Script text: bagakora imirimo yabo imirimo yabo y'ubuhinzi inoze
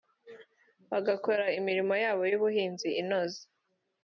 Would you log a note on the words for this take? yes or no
yes